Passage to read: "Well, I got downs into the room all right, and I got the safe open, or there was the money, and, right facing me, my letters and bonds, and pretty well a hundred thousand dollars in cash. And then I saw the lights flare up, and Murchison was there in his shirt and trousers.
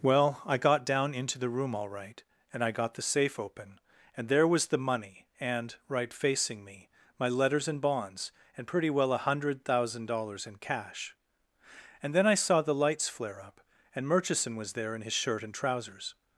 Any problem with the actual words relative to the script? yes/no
yes